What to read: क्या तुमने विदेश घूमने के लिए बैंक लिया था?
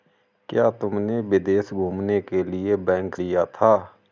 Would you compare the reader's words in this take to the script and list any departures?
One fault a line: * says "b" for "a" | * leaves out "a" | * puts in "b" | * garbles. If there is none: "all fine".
all fine